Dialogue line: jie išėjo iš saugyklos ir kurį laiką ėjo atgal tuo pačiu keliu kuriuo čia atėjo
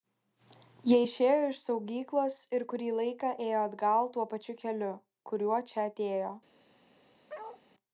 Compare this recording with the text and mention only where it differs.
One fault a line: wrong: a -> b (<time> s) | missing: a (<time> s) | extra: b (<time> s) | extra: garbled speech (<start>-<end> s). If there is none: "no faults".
no faults